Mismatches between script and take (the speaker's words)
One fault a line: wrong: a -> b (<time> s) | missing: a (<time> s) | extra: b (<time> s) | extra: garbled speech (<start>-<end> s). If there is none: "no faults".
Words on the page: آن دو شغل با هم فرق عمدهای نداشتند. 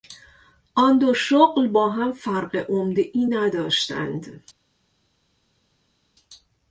no faults